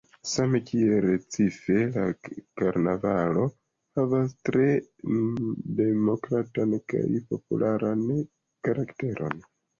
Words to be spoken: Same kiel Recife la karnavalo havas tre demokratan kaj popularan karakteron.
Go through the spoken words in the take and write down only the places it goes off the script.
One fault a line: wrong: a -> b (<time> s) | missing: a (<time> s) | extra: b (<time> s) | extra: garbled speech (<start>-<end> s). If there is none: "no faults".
no faults